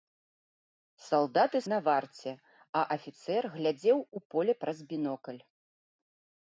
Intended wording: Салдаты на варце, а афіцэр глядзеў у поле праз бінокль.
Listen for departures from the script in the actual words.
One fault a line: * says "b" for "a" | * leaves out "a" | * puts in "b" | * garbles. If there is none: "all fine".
all fine